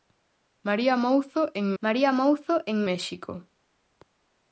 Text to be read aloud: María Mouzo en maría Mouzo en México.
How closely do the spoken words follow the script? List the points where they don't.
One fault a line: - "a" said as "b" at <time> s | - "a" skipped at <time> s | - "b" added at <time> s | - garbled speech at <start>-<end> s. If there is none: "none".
none